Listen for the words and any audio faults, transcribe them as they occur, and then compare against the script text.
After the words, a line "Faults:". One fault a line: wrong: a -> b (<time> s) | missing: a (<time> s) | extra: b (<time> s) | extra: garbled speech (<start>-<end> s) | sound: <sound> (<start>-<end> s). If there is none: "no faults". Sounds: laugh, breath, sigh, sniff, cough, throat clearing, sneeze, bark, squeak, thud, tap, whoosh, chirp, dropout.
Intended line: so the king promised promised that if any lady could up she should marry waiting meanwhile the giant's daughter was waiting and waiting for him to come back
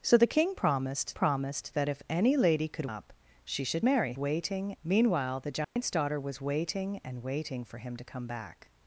so the king promised promised that if any lady could up she should marry waiting meanwhile the giant's daughter was waiting and waiting for him to come back
Faults:
sound: dropout (5.6-5.8 s)